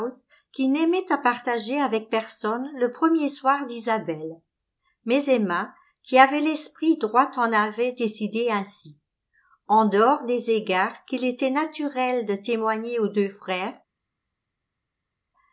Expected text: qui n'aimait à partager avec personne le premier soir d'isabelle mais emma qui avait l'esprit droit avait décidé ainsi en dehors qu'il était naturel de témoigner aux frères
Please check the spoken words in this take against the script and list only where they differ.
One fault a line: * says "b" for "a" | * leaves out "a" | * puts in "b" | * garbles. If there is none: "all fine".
* puts in "en"
* puts in "des égards"
* puts in "deux"